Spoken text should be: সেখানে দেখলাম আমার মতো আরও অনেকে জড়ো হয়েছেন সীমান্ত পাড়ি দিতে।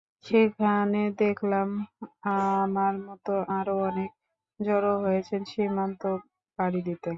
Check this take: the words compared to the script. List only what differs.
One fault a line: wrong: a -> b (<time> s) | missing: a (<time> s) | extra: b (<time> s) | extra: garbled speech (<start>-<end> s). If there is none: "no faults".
no faults